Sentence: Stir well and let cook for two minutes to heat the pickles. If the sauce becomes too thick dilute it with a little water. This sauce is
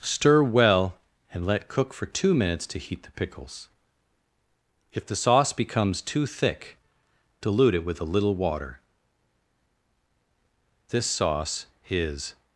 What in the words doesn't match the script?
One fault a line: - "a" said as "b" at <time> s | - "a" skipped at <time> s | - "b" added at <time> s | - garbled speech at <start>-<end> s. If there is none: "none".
none